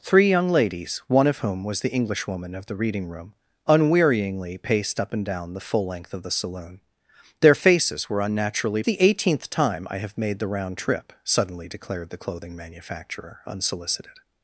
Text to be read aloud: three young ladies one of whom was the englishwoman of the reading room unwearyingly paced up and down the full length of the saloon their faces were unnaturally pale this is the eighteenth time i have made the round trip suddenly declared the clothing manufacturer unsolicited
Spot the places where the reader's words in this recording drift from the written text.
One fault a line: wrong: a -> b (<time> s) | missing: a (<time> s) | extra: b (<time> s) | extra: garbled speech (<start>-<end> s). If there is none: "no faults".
missing: pale this is (8.8 s)